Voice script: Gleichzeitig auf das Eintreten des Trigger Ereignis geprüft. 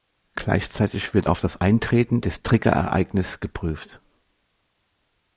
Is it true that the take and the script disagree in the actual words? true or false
true